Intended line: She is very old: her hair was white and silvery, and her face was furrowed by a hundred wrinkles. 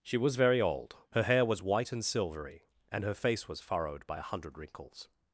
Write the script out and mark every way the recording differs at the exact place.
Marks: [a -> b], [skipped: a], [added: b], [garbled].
She [is -> was] very old: her hair was white and silvery, and her face was furrowed by a hundred wrinkles.